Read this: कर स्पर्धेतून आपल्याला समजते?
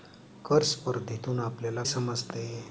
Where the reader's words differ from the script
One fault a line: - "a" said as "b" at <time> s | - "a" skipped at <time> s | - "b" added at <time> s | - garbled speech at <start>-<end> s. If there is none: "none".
none